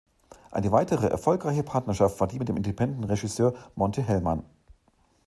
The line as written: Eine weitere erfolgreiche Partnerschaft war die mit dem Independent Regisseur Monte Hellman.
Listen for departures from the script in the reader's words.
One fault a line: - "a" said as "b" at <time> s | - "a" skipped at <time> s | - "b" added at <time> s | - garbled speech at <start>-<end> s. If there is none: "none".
none